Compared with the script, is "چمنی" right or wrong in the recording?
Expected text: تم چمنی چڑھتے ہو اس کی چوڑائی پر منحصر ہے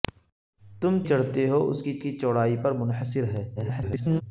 wrong